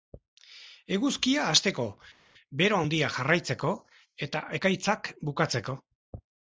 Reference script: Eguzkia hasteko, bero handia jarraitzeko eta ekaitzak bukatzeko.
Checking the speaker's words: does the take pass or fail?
pass